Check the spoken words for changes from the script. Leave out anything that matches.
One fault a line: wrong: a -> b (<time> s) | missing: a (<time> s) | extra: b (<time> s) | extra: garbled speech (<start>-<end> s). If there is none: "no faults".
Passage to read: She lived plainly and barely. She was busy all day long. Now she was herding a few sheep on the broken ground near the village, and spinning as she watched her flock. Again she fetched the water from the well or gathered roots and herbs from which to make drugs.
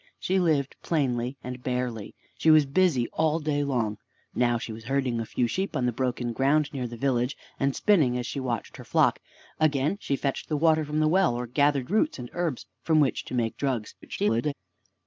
extra: garbled speech (14.0-14.5 s)